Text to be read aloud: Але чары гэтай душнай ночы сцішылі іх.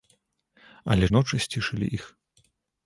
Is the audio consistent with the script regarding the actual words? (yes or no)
no